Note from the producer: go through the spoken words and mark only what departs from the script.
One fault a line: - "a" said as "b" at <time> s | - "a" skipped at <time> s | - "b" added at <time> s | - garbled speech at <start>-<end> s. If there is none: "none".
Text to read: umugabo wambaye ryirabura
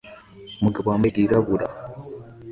none